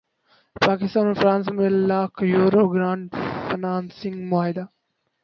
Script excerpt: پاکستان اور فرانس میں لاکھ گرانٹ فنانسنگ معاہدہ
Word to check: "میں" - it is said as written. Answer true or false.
true